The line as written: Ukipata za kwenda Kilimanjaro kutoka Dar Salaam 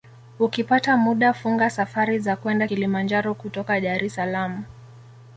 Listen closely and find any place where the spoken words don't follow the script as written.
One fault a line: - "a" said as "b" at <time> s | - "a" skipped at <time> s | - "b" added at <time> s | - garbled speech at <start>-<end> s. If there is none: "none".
- "muda funga safari" added at 1.0 s
- "es" added at 4.0 s